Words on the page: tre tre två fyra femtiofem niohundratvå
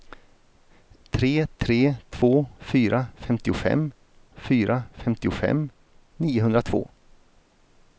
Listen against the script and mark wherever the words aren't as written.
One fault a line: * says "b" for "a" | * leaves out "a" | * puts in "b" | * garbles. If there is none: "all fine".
* puts in "fyra femtiofem"